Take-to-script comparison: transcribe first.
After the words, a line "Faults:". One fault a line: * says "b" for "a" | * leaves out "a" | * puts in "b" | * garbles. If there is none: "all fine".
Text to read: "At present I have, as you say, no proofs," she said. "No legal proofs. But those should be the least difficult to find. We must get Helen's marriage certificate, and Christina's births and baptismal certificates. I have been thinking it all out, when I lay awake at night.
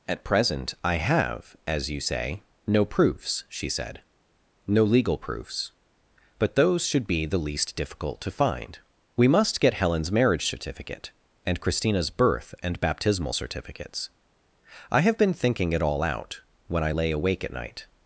"At present I have, as you say, no proofs," she said. "No legal proofs. But those should be the least difficult to find. We must get Helen's marriage certificate, and Christina's birth and baptismal certificates. I have been thinking it all out, when I lay awake at night.
Faults:
* says "birth" for "births"